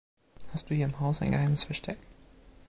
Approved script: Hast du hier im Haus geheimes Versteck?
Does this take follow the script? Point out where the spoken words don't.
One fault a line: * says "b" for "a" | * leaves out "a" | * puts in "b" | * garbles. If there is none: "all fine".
* puts in "ein"